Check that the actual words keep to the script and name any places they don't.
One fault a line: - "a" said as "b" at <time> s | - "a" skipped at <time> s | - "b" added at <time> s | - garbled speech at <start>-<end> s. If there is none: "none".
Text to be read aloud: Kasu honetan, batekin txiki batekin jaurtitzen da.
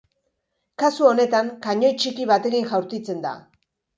- "batekin" said as "kanoi" at 1.7 s